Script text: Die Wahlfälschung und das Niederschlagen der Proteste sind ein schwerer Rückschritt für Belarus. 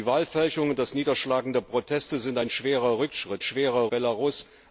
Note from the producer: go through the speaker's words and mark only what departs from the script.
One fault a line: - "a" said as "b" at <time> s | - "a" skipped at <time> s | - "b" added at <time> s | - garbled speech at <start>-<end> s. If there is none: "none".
- "für" said as "schwerer" at 3.4 s